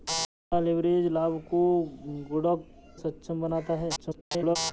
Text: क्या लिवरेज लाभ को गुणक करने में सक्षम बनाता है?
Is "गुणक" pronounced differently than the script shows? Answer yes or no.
yes